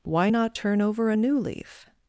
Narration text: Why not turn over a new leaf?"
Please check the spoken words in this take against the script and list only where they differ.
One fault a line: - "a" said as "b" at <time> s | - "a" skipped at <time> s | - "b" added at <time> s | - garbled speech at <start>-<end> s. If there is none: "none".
none